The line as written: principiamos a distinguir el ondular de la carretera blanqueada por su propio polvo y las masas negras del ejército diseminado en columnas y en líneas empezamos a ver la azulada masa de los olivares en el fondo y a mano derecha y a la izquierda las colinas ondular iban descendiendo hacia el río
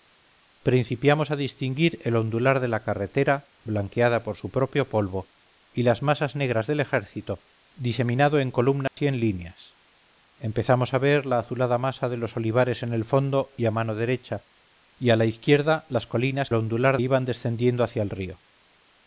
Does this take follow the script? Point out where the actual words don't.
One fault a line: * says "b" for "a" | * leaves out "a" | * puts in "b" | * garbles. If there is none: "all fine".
all fine